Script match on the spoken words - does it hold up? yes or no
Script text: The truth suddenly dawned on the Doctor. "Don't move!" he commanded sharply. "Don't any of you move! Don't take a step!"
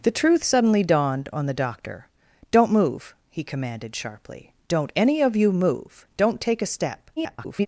no